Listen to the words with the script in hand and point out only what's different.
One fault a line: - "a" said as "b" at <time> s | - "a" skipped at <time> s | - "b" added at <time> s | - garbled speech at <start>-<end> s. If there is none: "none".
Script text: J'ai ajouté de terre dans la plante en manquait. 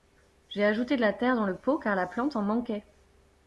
- "la" added at 1.0 s
- "le pot car" added at 1.4 s